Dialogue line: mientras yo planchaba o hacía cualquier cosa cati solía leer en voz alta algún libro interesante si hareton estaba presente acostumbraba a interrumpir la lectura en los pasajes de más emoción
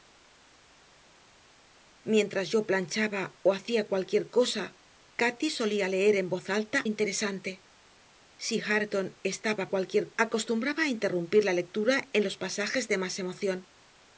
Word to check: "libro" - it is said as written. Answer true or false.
false